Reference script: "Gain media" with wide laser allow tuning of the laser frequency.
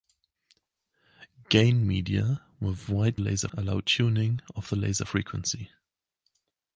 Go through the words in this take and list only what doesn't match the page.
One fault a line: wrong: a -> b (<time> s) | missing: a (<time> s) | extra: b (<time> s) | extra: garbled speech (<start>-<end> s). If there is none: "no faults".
no faults